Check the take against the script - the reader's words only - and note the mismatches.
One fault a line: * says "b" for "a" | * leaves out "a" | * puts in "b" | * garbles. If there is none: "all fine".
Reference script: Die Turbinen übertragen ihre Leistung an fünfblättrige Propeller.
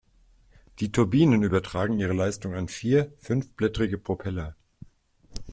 * puts in "vier"